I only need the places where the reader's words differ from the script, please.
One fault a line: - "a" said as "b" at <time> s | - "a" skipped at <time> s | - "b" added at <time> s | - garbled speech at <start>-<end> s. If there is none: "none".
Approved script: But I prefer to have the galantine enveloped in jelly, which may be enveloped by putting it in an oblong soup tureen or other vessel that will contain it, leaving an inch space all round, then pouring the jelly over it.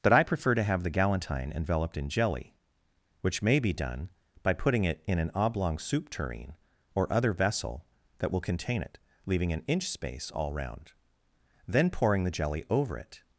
- "enveloped" said as "done" at 3.7 s